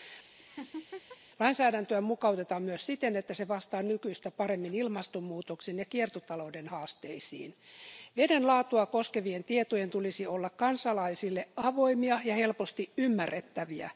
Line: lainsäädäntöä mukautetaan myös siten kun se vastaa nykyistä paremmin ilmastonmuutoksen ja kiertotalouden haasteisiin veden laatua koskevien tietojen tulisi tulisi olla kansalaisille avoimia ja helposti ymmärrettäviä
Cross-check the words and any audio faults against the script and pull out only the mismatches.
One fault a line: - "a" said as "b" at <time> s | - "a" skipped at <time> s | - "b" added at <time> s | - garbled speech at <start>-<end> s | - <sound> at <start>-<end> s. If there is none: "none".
- laugh at 0.4-1.2 s
- "kun" said as "että" at 3.2 s
- "tulisi" skipped at 10.3 s